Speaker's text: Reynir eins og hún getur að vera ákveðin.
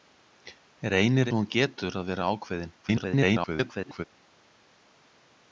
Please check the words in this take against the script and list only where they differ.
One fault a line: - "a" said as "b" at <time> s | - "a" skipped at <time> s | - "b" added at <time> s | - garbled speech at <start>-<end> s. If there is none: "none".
- "eins" skipped at 1.3 s
- garbled speech at 2.8-4.0 s